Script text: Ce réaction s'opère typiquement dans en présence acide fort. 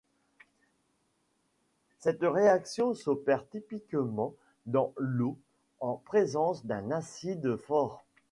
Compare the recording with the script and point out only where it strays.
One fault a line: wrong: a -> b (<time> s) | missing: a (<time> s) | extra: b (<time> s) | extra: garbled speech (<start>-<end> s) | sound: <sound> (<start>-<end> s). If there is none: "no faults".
wrong: Ce -> Cette (2.0 s)
extra: l'eau (5.0 s)
extra: d'un (6.6 s)